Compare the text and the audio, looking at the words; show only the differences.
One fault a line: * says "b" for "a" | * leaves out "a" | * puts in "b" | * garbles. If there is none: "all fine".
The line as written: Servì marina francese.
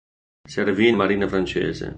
all fine